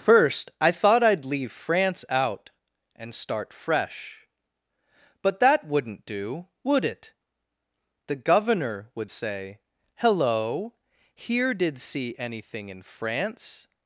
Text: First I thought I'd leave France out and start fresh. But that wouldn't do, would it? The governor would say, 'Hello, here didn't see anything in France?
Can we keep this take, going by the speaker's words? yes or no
no